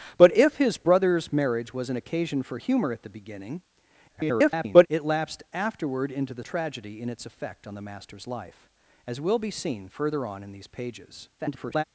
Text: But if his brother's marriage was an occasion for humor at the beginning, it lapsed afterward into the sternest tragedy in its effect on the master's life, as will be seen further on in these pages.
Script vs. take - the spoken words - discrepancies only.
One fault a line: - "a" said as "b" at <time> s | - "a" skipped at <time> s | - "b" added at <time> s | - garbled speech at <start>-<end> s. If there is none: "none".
- garbled speech at 4.1-4.9 s
- "sternest" skipped at 6.4 s
- garbled speech at 11.4-11.8 s